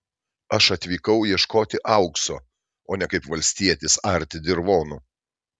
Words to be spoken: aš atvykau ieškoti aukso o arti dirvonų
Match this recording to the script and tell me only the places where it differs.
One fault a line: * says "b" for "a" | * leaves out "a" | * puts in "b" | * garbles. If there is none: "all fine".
* puts in "ne kaip valstietis"